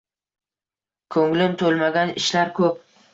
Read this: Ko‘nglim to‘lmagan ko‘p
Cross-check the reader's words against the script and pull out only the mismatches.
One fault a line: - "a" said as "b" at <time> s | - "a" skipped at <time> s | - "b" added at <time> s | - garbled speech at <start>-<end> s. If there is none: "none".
- "ishlar" added at 2.2 s